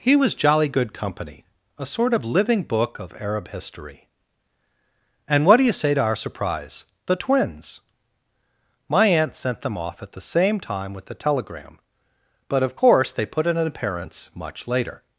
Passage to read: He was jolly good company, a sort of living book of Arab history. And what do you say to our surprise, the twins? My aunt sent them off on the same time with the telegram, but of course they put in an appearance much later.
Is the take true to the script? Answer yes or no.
no